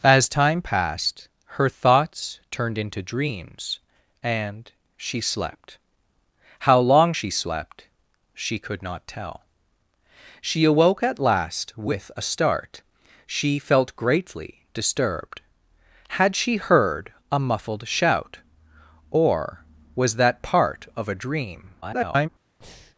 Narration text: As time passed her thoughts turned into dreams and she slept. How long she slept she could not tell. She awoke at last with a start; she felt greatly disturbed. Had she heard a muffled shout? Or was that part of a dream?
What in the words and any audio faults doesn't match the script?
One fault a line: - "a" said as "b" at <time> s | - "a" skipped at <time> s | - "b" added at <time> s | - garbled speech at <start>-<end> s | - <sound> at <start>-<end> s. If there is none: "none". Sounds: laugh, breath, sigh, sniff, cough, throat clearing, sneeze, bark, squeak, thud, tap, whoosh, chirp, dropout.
- garbled speech at 21.8-22.3 s
- breath at 22.6-23.0 s